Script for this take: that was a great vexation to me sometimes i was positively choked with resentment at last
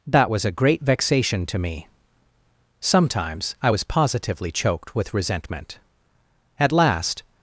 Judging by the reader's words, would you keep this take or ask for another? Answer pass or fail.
pass